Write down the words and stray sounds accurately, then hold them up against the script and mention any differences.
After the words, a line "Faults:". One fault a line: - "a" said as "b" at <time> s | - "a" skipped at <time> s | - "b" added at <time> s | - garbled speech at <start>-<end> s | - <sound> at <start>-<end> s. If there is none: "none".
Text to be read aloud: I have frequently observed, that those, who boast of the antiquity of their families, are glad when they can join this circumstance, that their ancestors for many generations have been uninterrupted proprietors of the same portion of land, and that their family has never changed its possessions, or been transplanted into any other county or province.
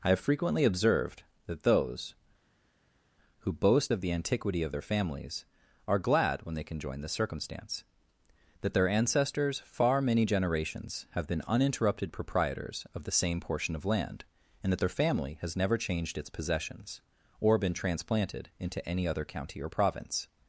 I have frequently observed, that those, who boast of the antiquity of their families, are glad when they can join this circumstance, that their ancestors far many generations have been uninterrupted proprietors of the same portion of land, and that their family has never changed its possessions, or been transplanted into any other county or province.
Faults:
- "for" said as "far" at 9.6 s